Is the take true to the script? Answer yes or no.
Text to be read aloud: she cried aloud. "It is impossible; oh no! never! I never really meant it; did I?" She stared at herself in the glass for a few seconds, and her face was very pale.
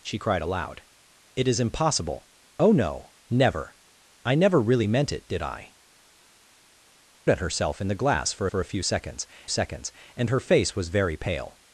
no